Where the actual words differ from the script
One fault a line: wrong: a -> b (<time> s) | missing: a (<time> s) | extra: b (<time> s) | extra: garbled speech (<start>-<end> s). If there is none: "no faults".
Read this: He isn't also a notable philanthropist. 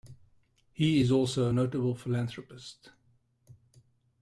wrong: isn't -> is (1.0 s)